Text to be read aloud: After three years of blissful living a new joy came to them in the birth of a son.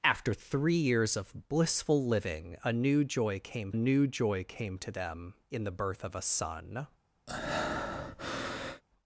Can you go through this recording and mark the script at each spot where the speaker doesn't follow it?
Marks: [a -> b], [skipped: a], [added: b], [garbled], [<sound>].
After three years of blissful living a new joy came [added: new joy came] to them in the birth of a son. [breath]